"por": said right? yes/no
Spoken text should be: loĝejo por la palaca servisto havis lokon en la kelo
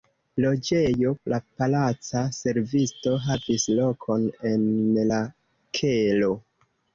no